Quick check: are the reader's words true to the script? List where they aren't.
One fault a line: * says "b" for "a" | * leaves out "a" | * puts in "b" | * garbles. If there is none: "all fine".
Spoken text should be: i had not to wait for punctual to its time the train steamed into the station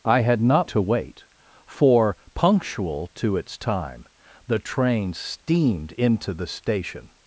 all fine